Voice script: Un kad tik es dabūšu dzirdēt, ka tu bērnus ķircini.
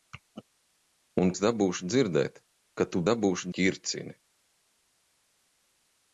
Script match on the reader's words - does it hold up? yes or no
no